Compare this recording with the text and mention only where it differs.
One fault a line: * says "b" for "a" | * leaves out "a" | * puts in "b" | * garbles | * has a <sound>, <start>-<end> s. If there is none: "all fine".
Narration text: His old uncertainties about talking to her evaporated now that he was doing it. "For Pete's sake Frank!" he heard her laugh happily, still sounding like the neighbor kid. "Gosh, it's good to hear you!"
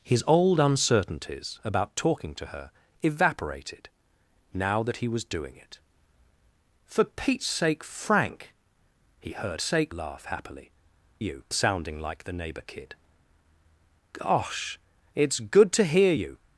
* says "sake" for "her"
* says "you" for "still"